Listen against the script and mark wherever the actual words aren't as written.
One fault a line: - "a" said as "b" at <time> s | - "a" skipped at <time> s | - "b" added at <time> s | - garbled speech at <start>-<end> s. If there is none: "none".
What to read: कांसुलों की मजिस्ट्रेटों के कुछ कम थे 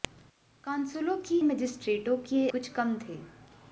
none